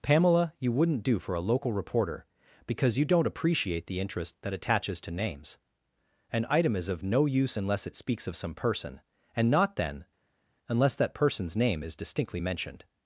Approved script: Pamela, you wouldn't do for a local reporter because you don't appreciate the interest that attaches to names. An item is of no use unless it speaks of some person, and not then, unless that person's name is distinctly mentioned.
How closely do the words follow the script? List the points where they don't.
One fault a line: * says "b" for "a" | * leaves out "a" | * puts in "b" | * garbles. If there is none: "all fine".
all fine